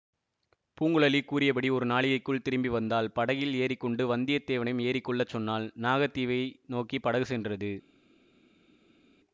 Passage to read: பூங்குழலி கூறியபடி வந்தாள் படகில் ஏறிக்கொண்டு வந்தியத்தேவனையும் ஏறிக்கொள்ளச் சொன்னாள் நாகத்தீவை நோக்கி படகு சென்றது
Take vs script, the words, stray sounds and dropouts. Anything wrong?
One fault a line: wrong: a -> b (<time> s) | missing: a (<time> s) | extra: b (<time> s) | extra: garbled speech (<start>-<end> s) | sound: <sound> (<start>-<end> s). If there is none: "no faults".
extra: ஒரு நாழிகைக்குள் திரும்பி (1.7 s)